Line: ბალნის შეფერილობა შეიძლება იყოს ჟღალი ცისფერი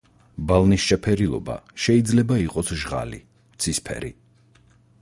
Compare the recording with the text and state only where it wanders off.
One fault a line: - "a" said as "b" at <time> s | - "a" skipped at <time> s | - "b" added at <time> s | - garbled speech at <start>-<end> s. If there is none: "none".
none